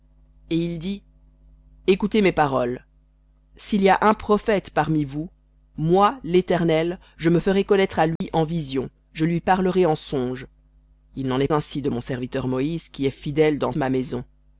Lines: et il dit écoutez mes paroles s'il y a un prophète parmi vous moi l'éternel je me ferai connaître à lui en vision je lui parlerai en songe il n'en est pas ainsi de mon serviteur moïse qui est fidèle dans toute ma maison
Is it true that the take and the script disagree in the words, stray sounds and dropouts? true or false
true